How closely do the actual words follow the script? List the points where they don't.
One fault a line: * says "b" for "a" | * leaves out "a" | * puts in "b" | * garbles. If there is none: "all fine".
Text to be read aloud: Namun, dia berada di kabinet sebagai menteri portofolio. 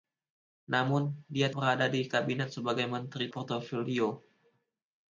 all fine